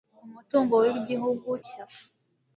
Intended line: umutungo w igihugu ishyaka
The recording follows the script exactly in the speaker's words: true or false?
true